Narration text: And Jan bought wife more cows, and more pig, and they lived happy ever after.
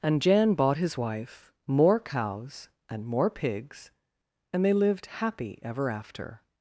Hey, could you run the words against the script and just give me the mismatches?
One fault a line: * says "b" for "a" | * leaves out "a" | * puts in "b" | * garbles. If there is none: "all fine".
* puts in "his"
* says "pigs" for "pig"